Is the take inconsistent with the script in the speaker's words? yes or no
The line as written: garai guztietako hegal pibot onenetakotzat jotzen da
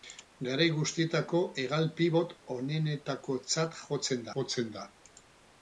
yes